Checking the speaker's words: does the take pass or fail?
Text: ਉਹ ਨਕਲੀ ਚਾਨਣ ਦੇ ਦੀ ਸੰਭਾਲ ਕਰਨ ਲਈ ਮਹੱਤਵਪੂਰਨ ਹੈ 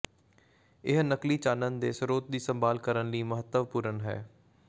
fail